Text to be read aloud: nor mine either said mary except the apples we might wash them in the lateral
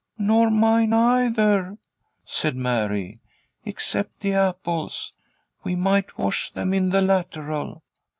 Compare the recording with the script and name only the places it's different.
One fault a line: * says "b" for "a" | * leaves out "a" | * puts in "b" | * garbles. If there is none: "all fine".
all fine